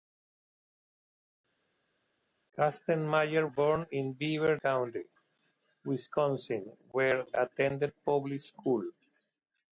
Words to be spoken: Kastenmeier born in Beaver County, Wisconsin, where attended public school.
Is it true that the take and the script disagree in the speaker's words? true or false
false